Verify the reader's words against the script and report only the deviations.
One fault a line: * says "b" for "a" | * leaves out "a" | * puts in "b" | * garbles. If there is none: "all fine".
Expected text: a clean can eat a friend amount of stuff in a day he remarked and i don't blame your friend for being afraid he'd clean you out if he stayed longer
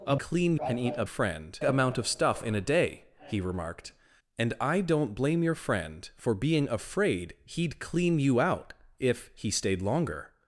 all fine